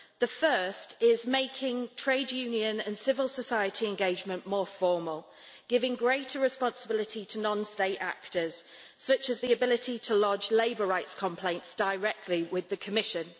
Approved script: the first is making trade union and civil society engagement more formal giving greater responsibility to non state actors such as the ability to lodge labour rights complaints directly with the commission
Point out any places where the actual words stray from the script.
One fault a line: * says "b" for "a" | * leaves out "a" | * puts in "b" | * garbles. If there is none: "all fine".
all fine